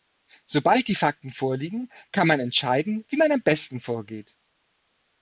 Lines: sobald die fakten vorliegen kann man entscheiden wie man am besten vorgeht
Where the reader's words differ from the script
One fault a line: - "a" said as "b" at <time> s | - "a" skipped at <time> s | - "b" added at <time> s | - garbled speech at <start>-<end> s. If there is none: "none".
none